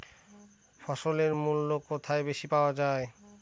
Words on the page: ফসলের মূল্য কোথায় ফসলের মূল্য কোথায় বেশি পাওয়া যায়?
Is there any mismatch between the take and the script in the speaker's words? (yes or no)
yes